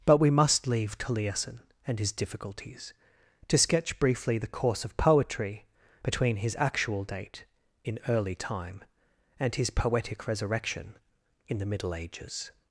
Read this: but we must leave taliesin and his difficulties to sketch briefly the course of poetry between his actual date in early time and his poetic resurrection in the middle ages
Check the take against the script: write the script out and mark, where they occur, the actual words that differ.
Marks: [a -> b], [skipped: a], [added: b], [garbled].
but we must leave taliesin and his difficulties to sketch briefly the course of poetry between his actual date in early time and his poetic resurrection in the middle ages